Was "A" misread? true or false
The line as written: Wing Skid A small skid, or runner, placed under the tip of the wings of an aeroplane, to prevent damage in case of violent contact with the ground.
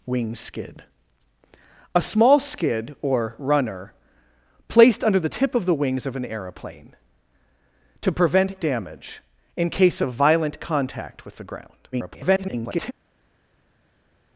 false